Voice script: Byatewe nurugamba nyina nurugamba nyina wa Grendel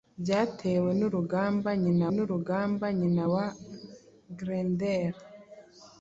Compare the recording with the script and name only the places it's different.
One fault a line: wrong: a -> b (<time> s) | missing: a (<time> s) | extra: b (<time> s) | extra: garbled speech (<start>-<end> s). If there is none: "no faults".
no faults